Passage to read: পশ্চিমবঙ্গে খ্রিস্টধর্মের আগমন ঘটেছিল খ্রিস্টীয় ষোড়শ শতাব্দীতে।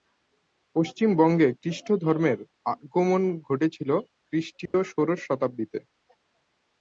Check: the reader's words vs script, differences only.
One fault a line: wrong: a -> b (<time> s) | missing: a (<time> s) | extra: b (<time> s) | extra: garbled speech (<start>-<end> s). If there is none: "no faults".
no faults